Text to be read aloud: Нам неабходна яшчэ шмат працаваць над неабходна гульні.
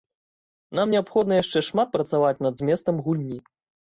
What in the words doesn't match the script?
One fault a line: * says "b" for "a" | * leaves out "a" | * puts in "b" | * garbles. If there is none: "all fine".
* says "зместам" for "неабходна"